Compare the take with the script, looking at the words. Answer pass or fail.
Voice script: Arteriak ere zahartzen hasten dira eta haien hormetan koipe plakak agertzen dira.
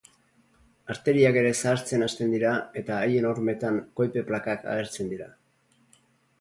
pass